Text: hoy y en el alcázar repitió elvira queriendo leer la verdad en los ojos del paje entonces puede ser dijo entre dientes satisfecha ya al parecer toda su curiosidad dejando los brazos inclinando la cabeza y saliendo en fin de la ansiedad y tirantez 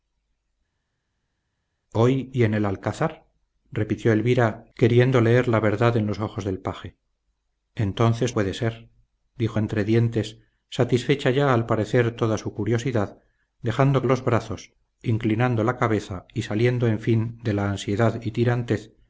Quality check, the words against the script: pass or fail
pass